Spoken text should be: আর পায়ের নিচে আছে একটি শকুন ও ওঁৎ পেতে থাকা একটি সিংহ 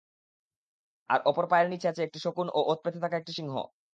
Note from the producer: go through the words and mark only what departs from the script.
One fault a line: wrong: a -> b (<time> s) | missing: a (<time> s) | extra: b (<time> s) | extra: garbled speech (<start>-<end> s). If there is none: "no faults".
extra: অপর (1.2 s)